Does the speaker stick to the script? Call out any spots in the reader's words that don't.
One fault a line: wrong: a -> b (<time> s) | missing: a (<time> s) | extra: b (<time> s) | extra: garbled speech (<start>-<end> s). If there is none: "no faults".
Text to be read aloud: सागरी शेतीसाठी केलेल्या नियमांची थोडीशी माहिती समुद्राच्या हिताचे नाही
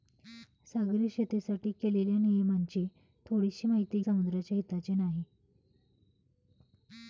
no faults